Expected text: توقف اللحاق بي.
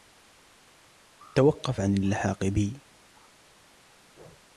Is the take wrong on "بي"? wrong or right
right